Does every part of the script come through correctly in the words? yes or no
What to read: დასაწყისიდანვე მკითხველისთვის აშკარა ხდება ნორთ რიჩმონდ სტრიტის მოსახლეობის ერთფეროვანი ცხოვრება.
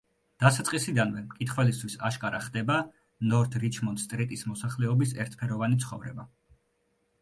yes